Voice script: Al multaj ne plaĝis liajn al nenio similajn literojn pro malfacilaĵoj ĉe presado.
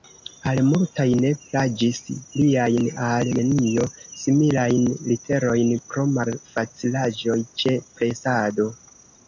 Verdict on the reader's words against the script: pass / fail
pass